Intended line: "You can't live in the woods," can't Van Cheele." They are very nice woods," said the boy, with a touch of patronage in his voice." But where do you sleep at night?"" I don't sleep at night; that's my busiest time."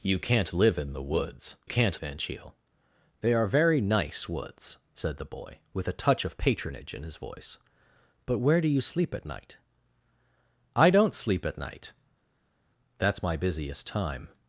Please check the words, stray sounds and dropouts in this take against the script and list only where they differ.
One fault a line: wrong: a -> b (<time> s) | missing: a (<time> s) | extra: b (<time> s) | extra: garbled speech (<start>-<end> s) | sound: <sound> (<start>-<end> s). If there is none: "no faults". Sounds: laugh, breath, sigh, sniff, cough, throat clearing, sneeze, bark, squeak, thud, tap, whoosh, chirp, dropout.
no faults